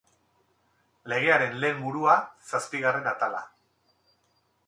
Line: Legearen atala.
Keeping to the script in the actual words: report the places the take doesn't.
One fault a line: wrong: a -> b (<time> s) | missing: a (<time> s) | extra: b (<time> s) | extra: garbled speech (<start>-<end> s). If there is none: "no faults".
extra: lehen burua zazpigarren (1.6 s)